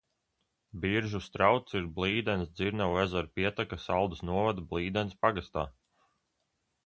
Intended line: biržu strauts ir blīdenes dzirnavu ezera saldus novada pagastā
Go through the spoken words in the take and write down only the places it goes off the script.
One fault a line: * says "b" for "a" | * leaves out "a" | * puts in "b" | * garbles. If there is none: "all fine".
* puts in "pieteka"
* puts in "blīdenes"